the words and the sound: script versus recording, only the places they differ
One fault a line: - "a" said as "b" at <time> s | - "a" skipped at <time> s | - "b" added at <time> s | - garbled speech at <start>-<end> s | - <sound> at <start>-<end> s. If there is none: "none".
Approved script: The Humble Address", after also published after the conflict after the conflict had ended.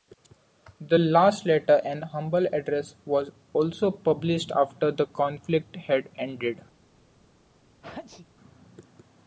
- "last letter An" added at 1.0 s
- "after" said as "was" at 3.0 s
- "after the conflict" skipped at 5.8 s
- sneeze at 7.8-8.3 s